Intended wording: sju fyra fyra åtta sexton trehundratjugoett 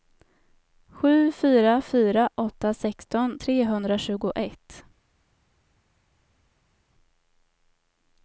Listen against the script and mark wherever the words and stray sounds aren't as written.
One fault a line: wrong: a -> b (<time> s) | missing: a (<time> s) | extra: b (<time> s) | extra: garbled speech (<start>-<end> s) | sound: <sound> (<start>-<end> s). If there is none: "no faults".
no faults